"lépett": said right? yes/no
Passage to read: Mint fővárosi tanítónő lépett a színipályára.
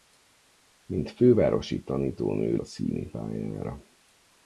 no